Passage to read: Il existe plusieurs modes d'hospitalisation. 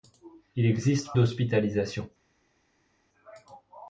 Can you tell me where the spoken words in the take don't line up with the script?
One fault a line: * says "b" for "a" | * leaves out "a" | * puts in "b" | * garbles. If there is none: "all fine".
* leaves out "plusieurs modes"